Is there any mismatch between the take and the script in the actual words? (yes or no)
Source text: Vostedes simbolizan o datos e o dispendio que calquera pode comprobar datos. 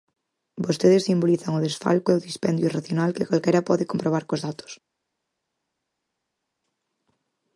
yes